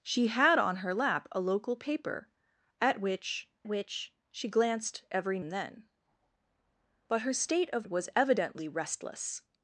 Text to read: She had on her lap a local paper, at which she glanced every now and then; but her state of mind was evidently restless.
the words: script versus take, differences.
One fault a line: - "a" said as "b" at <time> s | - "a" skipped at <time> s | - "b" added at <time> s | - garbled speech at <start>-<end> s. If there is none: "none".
- "which" added at 3.7 s
- "now" skipped at 5.4 s
- "mind" skipped at 7.9 s